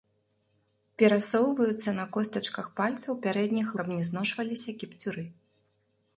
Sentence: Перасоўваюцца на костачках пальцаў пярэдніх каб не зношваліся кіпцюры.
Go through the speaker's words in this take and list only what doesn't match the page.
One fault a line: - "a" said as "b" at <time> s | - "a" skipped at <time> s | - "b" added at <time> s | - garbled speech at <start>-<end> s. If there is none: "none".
none